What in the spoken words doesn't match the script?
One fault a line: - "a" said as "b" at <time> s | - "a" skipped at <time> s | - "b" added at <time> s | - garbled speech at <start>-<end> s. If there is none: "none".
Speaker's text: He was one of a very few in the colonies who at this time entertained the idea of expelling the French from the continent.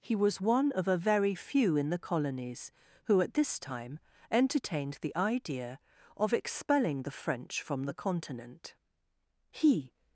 - "He" added at 9.5 s